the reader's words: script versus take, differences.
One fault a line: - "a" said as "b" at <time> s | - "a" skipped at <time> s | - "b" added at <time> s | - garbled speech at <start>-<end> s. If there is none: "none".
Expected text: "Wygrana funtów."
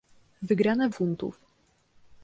none